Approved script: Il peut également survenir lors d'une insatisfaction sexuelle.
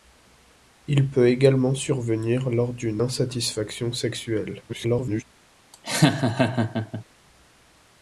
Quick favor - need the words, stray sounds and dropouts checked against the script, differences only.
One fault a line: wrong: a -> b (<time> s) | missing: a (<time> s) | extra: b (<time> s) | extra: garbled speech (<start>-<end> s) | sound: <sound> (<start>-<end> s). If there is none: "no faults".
extra: garbled speech (4.7-5.2 s)
sound: laugh (5.7-7.0 s)